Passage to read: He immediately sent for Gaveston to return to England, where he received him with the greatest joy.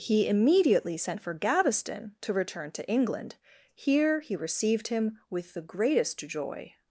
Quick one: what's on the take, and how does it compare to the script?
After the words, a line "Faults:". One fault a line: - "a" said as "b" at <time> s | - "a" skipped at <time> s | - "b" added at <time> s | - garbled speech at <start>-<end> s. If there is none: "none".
He immediately sent for Gaveston to return to England, here he received him with the greatest joy.
Faults:
- "where" said as "here" at 3.8 s